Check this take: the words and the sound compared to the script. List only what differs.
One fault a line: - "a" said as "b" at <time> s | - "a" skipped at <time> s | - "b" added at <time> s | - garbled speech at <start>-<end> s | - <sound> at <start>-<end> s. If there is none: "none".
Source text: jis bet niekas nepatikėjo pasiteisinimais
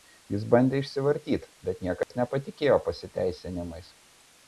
- "bandė išsivartyt" added at 0.5 s
- dropout at 2.0-2.1 s